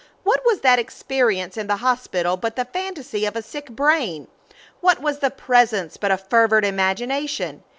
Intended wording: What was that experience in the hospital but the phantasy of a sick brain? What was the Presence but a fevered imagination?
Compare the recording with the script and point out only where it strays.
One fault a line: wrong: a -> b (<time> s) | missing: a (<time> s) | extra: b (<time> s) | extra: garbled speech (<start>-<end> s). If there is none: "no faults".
no faults